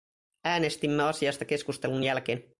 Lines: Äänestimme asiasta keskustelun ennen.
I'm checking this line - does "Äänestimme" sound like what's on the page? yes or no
yes